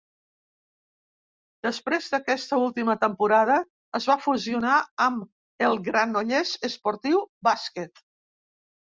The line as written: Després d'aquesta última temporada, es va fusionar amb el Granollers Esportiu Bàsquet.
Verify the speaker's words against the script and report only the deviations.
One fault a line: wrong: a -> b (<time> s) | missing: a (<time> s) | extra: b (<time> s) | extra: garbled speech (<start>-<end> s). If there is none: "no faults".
no faults